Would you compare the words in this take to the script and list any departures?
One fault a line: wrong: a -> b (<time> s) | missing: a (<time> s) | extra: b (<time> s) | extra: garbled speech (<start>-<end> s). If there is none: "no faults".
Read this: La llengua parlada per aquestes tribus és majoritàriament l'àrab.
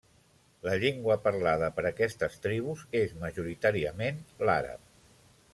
no faults